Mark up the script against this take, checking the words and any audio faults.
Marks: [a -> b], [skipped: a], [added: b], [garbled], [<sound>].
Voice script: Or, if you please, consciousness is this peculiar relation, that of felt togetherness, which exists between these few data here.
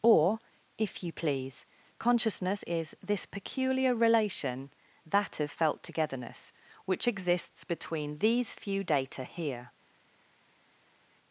Or, if you please, consciousness is this peculiar relation, that of felt togetherness, which exists between these few data here.